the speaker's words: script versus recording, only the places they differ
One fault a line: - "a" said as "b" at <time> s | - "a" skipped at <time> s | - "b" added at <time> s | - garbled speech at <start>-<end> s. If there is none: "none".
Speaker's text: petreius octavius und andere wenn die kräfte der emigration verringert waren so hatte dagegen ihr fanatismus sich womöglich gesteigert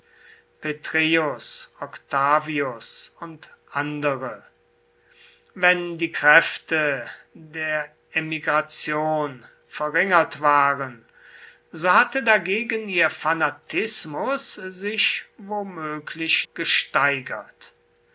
none